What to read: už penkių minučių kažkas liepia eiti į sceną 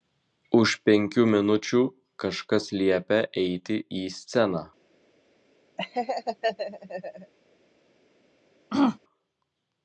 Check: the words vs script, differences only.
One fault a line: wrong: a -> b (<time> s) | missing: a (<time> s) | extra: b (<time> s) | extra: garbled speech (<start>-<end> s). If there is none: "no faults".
no faults